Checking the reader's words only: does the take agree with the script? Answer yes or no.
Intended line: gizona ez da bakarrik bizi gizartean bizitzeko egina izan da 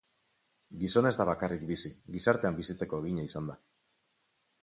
yes